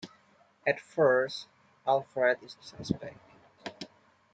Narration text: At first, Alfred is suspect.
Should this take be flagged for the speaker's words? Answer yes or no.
no